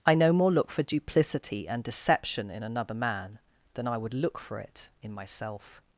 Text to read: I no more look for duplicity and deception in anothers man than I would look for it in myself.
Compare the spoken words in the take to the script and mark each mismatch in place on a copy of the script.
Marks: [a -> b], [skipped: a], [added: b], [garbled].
I no more look for duplicity and deception in [anothers -> another] man than I would look for it in myself.